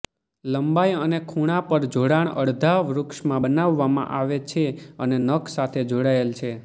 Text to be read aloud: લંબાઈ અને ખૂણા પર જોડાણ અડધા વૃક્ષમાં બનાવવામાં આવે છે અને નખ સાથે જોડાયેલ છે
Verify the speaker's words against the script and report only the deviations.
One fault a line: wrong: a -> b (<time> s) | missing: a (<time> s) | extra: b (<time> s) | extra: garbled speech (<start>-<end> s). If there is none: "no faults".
no faults